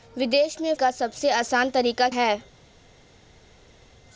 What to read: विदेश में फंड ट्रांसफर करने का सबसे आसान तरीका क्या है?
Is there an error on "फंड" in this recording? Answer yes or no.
yes